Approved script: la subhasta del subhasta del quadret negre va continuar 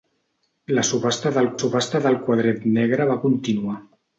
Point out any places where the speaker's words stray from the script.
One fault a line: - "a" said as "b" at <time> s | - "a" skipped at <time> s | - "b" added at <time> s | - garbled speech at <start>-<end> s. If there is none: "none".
none